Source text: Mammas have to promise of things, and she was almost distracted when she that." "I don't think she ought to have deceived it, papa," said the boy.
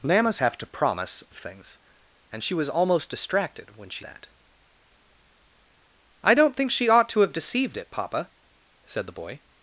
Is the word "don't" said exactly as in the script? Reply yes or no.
yes